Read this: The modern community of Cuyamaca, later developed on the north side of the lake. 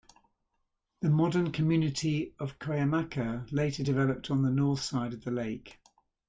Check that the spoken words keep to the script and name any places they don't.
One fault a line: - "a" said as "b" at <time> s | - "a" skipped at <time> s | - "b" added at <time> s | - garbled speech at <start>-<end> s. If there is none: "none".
none